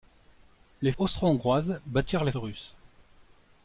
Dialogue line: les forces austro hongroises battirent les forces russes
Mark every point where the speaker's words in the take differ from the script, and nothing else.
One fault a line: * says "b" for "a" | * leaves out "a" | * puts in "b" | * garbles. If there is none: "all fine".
* leaves out "forces"
* leaves out "forces"